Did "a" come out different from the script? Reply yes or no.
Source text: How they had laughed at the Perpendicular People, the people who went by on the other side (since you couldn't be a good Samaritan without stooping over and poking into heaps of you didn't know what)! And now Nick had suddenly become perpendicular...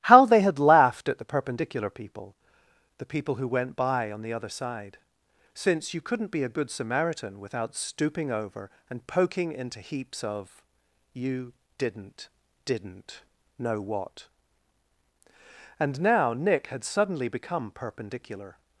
no